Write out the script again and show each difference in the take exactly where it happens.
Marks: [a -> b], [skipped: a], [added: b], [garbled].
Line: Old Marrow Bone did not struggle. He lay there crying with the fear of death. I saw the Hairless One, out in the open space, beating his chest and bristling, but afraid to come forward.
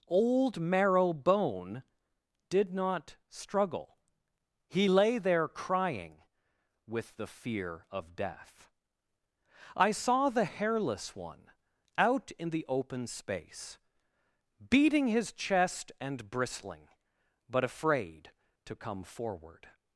Old Marrow Bone did not struggle. He lay there crying with the fear of death. I saw the Hairless One, out in the open space, beating his chest and bristling, but afraid to come forward.